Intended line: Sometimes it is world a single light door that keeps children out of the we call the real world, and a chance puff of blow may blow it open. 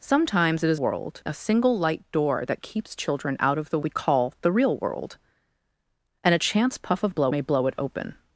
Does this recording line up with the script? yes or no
yes